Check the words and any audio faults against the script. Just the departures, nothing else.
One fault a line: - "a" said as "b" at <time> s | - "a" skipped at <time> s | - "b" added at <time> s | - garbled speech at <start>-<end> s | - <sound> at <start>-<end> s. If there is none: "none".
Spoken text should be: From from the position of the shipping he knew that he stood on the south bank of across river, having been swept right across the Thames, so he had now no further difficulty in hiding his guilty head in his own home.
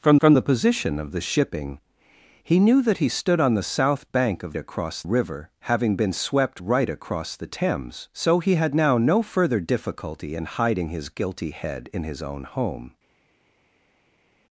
none